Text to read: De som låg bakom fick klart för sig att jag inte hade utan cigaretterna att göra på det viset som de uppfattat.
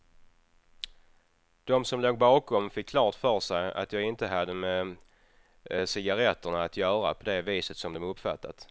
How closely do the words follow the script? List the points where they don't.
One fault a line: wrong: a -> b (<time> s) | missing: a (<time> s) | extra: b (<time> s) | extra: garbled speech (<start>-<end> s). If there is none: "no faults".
wrong: utan -> med (4.5 s)